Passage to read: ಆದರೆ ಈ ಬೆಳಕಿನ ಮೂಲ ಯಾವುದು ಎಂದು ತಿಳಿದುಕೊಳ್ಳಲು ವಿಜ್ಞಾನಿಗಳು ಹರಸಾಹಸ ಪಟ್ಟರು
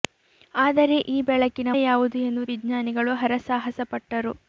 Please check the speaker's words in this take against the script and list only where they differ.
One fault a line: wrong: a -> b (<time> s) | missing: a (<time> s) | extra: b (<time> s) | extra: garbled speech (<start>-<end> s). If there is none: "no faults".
missing: ಮೂಲ (1.7 s)
missing: ತಿಳಿದುಕೊಳ್ಳಲು (2.4 s)